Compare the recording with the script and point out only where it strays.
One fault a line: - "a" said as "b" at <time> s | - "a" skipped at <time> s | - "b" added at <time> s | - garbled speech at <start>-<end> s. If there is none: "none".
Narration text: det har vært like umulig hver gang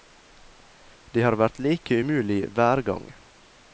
none